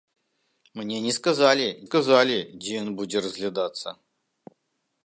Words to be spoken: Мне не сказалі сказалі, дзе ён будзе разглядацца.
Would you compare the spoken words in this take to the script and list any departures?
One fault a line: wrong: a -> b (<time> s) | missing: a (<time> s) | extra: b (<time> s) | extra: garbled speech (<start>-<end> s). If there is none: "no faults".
no faults